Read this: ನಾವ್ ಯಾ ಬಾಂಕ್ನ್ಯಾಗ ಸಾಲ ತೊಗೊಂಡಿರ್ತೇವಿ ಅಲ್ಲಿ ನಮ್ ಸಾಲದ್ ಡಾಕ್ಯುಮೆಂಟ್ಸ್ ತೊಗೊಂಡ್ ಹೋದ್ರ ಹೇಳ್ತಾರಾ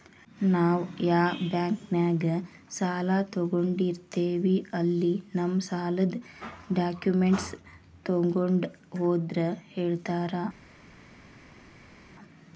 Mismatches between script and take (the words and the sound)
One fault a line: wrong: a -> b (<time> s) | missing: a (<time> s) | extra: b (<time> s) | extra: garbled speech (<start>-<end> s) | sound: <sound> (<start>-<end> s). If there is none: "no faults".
no faults